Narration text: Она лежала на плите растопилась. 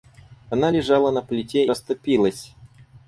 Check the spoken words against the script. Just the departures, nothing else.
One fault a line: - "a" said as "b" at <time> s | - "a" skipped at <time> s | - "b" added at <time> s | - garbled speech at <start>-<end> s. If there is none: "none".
none